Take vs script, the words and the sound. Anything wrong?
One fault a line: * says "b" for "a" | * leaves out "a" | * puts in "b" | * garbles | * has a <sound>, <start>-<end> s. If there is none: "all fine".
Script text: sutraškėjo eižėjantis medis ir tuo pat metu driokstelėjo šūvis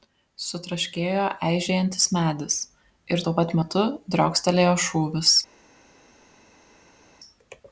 all fine